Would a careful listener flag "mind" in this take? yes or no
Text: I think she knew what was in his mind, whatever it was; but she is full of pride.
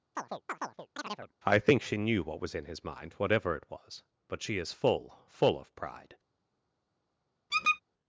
no